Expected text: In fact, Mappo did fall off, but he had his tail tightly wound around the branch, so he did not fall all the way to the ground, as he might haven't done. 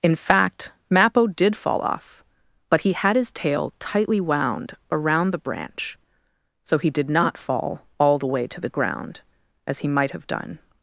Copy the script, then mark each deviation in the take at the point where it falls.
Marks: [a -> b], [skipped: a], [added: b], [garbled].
In fact, Mappo did fall off, but he had his tail tightly wound around the branch, so he did not fall all the way to the ground, as he might [haven't -> have] done.